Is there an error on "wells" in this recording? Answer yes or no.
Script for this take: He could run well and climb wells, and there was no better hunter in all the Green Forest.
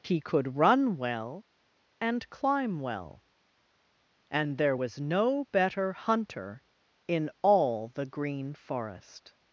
yes